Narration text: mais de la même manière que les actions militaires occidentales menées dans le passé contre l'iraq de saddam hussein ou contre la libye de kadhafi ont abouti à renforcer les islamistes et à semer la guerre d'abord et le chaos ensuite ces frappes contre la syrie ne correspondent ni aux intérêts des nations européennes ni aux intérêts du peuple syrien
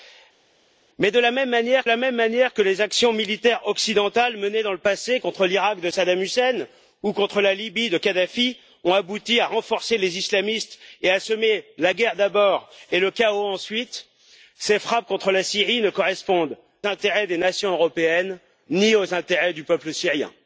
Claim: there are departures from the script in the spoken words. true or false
true